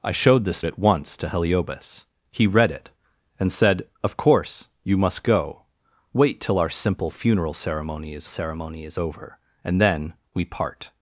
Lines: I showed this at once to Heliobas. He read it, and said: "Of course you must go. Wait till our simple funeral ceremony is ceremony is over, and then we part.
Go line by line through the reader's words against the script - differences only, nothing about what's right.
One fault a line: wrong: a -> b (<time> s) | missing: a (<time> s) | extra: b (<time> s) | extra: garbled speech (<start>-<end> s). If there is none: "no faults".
no faults